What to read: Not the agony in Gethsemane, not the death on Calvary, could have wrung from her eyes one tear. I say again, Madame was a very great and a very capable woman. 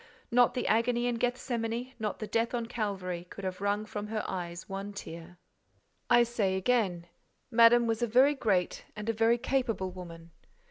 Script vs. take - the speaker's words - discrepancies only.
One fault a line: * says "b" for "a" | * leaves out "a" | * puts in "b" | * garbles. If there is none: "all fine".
all fine